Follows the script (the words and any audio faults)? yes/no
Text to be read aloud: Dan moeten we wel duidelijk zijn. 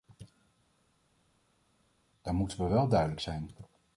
yes